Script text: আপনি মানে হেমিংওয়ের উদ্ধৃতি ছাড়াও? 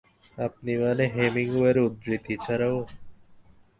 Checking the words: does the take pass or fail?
pass